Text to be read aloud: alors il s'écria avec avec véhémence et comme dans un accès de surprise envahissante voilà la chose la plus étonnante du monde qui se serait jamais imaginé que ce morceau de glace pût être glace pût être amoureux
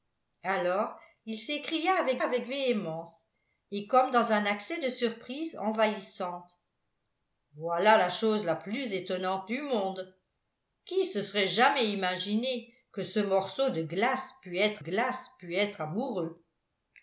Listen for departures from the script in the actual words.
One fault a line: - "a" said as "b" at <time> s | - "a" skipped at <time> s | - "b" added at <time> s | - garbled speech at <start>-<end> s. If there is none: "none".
none